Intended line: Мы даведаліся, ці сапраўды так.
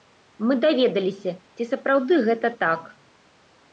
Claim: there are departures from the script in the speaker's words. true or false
true